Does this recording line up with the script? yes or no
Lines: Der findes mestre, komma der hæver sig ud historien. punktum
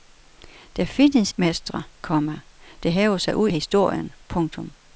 yes